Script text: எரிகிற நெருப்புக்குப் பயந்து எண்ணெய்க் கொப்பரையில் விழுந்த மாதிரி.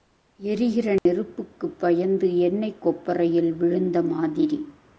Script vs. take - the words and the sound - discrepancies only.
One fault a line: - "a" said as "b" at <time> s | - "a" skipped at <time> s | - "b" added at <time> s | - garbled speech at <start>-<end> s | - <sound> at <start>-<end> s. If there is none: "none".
- dropout at 1.0-1.1 s